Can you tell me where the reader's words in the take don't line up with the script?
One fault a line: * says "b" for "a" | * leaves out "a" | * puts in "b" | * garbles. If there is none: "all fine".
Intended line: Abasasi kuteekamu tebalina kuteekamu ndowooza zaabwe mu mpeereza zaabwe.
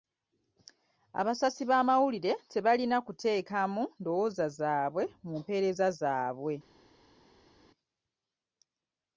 * says "b'amawulire" for "kuteekamu"